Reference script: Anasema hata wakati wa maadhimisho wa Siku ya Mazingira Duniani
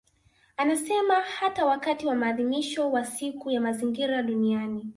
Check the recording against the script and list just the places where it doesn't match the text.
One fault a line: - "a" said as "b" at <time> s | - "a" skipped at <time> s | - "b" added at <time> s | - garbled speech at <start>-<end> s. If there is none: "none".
none